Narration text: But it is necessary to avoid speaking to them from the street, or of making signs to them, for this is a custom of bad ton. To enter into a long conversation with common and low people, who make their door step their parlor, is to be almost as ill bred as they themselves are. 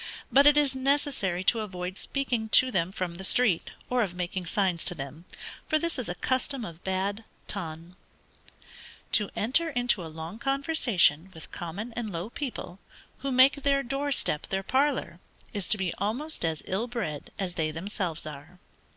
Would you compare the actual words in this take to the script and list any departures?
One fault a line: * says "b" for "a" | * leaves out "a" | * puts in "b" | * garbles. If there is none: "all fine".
all fine